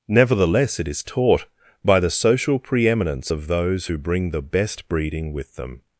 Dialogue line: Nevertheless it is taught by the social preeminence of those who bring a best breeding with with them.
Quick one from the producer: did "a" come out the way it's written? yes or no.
no